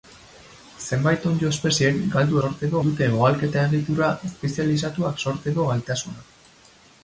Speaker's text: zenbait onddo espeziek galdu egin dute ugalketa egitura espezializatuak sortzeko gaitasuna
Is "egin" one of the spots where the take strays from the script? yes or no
yes